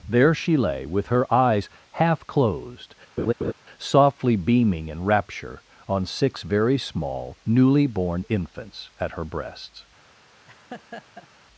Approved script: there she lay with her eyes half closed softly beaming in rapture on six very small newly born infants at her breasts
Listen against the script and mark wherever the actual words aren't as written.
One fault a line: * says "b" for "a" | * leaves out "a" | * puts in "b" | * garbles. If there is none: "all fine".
all fine